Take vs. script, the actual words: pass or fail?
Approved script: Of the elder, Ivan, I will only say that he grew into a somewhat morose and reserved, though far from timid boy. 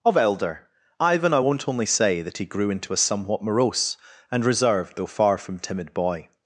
fail